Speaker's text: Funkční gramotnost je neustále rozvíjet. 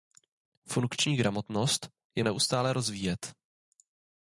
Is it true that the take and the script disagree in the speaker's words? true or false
false